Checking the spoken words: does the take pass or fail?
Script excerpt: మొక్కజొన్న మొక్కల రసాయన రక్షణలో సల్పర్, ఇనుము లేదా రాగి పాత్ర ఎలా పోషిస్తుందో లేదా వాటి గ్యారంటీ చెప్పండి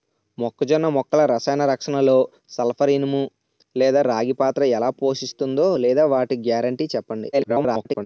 fail